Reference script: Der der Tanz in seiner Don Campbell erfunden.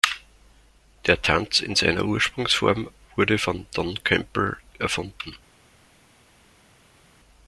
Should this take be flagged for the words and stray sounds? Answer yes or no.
yes